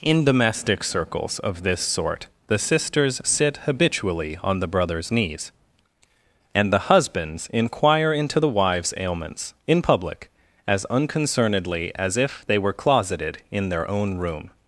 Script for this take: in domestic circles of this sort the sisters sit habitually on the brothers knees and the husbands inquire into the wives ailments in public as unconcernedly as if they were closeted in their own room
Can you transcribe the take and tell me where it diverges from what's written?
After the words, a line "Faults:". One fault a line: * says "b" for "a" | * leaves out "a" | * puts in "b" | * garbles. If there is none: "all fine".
in domestic circles of this sort the sisters sit habitually on the brothers knees and the husbands inquire into the wives ailments in public as unconcernedly as if they were closeted in their own room
Faults:
all fine